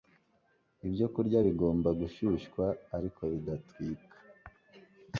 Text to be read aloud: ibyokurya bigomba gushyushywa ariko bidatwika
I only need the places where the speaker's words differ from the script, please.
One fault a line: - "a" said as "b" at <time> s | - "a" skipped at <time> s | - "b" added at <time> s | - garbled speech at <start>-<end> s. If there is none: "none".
none